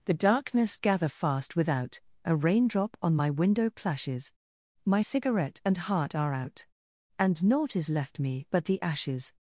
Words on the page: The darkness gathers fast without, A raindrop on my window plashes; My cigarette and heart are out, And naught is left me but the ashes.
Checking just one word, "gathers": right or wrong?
wrong